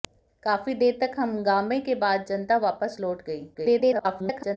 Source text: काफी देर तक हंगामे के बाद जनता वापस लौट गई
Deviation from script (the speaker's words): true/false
true